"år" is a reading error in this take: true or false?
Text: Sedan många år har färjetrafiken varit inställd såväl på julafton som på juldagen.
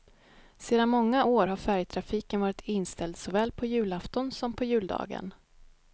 false